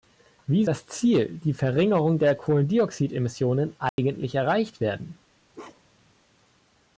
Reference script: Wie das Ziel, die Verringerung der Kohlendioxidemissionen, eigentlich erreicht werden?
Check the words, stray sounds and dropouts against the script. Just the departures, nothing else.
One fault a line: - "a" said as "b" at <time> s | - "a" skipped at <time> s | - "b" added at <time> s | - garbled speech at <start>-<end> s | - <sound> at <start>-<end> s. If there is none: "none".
- dropout at 3.9-4.0 s
- bark at 5.5-6.1 s